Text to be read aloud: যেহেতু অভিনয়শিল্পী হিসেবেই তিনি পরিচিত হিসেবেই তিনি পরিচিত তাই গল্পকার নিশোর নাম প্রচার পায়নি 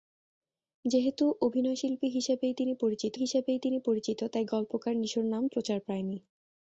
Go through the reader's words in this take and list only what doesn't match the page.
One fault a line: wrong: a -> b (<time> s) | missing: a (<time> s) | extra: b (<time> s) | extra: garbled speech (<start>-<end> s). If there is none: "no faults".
no faults